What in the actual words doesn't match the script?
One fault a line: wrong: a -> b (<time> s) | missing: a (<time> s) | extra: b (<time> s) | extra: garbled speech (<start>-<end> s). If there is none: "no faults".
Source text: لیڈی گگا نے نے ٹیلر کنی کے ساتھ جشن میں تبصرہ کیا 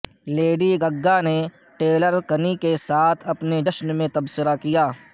missing: نے (1.4 s)
extra: اپنے (3.3 s)